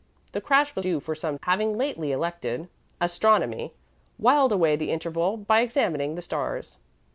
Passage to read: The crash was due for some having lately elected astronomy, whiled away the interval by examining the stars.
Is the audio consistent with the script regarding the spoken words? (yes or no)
yes